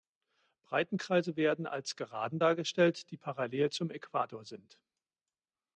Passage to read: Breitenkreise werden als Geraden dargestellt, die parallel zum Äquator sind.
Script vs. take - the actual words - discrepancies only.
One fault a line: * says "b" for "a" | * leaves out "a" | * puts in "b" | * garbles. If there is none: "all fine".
all fine